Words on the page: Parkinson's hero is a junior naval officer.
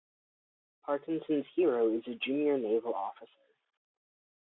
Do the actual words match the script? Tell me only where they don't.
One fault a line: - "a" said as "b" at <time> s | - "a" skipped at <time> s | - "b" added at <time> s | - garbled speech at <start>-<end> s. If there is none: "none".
none